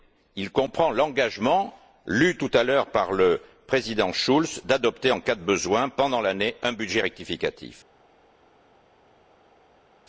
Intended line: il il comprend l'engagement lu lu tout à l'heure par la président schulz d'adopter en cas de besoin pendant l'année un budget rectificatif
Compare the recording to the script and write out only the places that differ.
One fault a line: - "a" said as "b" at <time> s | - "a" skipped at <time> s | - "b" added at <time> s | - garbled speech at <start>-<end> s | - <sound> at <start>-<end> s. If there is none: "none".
- "il" skipped at 0.5 s
- "lu" skipped at 2.4 s
- "la" said as "le" at 3.1 s